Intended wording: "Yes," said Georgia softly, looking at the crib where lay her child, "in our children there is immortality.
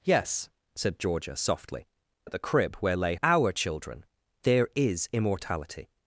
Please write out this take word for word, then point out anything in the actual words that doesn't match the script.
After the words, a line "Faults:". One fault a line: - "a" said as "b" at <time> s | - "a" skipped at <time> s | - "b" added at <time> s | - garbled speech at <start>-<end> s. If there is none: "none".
"Yes," said Georgia softly, at the crib where lay our children there is immortality.
Faults:
- "looking" skipped at 1.9 s
- "her child in" skipped at 3.2 s